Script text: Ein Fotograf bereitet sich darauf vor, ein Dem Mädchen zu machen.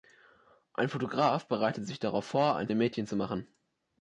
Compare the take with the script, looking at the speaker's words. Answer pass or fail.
pass